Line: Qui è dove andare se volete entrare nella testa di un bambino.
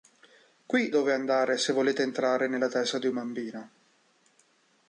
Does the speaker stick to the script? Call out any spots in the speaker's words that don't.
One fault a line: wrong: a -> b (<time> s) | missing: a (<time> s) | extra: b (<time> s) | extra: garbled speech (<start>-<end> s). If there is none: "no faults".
missing: è (0.9 s)